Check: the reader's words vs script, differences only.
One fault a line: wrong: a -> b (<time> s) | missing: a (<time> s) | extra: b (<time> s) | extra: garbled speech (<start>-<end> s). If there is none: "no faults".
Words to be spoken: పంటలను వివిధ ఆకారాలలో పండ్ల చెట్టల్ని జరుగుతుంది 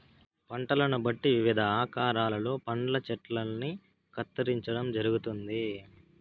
extra: బట్టి (1.0 s)
extra: కత్తిరించడం (4.1 s)